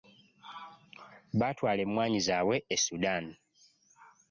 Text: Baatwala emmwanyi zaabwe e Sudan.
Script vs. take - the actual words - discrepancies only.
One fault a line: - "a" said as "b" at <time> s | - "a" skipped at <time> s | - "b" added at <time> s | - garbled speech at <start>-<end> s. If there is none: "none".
none